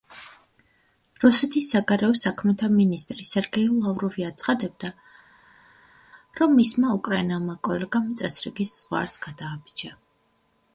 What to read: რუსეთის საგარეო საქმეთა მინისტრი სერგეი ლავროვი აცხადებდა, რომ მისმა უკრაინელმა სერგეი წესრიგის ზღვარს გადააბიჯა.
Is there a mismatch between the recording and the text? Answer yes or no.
yes